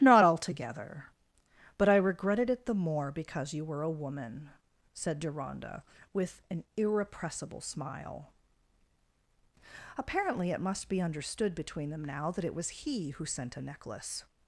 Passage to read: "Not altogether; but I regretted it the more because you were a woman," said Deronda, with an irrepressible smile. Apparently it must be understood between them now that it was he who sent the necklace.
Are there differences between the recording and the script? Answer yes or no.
yes